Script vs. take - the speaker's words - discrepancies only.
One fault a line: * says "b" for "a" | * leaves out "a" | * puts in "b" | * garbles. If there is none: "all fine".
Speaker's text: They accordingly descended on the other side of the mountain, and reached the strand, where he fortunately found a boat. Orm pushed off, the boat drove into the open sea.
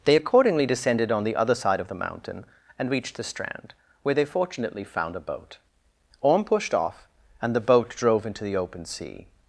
* says "they" for "he"
* puts in "and"